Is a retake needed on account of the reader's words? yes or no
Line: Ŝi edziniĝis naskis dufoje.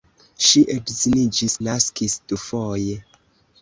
no